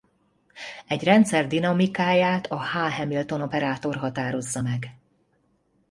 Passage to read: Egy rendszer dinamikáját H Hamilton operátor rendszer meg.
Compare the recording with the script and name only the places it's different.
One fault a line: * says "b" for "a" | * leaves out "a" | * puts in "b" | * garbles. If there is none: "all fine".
* puts in "a"
* says "határozza" for "rendszer"